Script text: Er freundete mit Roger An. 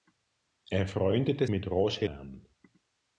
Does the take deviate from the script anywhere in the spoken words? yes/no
no